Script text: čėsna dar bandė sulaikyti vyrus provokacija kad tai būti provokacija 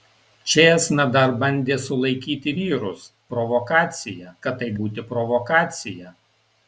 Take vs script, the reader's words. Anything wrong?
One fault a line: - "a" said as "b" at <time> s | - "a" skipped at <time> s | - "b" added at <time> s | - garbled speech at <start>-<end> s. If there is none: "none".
none